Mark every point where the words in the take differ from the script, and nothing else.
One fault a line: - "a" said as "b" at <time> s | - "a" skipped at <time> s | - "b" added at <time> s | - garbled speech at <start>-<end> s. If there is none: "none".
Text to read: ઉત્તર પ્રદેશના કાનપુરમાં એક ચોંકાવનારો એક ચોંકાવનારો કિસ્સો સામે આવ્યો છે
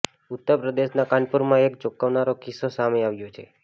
- "એક ચોંકાવનારો" skipped at 2.4 s